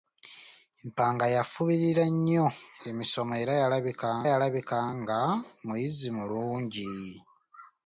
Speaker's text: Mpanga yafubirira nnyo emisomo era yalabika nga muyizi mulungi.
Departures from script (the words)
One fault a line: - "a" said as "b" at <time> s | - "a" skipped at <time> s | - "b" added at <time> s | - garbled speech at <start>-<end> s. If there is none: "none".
- "yalabika" added at 4.3 s